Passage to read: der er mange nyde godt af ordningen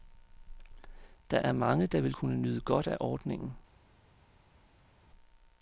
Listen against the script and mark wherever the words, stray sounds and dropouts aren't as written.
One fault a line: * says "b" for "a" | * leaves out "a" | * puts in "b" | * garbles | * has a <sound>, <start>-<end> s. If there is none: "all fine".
* puts in "der vil kunne"